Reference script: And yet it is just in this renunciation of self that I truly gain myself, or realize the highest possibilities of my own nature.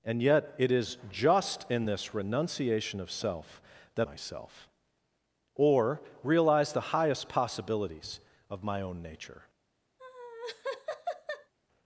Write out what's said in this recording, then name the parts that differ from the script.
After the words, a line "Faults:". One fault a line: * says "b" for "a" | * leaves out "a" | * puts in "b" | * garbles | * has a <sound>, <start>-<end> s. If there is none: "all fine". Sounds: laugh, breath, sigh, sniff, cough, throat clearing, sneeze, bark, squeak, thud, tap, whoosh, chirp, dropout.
And yet it is just in this renunciation of self that myself, or realize the highest possibilities of my own nature.
Faults:
* leaves out "I truly gain"
* has a laugh, 10.0-11.5 s